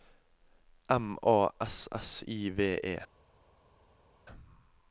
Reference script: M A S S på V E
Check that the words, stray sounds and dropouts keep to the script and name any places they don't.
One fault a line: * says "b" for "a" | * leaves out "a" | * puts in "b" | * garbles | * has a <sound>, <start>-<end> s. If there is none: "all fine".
* says "I" for "på"